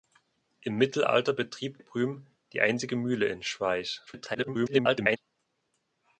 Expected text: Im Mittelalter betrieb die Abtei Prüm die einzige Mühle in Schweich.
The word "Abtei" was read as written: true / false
false